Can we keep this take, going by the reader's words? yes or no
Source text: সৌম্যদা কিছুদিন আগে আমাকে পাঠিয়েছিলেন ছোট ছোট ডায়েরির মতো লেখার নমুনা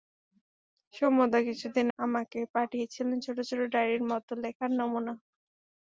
no